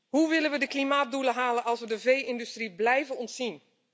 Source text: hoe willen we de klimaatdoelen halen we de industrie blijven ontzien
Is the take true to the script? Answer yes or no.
no